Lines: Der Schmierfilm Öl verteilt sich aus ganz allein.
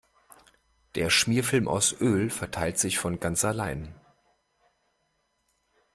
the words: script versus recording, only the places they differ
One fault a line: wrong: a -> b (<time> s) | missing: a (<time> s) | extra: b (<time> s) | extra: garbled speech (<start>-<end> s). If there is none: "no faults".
extra: aus (1.7 s)
wrong: aus -> von (3.0 s)